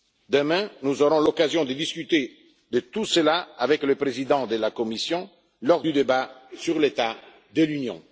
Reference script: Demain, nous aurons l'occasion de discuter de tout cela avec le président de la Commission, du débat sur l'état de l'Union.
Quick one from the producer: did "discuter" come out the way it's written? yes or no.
yes